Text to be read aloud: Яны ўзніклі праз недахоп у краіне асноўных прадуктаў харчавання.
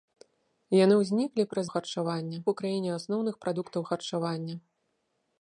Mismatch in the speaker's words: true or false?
true